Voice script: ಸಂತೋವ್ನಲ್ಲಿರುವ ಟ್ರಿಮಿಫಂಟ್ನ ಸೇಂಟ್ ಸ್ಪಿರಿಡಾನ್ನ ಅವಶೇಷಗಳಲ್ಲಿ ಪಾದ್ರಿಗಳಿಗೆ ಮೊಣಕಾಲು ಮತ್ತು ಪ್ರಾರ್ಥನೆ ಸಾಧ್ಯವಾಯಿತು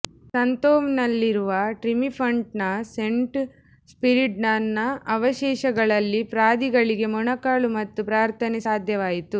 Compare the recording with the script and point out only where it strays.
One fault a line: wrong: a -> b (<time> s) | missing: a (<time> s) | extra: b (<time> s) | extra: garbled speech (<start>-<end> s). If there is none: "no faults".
no faults